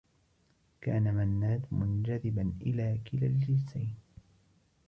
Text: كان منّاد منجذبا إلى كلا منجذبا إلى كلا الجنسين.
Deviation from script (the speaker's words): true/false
true